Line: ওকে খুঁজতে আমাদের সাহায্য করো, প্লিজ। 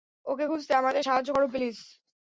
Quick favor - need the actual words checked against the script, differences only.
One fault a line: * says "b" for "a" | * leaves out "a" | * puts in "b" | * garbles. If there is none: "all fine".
all fine